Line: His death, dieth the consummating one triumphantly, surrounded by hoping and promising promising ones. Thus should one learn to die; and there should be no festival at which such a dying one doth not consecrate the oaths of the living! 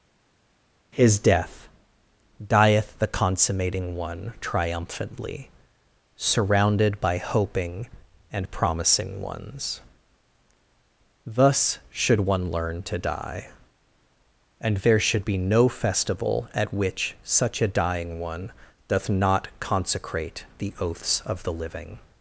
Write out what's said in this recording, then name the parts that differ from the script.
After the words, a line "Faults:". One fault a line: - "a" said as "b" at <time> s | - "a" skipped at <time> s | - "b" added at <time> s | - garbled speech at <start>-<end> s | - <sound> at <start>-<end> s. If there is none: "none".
His death, dieth the consummating one triumphantly, surrounded by hoping and promising ones. Thus should one learn to die; and there should be no festival at which such a dying one doth not consecrate the oaths of the living!
Faults:
- "promising" skipped at 9.2 s